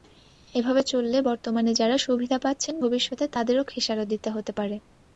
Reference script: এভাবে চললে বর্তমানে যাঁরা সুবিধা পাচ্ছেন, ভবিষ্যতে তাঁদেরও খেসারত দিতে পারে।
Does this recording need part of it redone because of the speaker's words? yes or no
yes